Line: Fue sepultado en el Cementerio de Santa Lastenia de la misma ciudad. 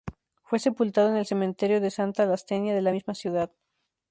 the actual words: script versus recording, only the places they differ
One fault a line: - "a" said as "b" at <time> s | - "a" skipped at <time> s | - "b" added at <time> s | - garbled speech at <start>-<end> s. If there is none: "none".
none